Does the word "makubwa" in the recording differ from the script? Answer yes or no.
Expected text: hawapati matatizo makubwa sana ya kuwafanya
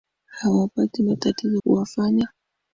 yes